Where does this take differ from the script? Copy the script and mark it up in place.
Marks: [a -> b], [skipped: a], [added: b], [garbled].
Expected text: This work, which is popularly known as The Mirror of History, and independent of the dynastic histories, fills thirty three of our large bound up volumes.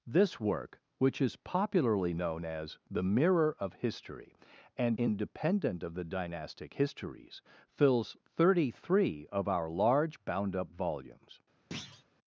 This work, which is popularly known as The Mirror of History, and independent of the dynastic histories, fills thirty three of our large bound up volumes.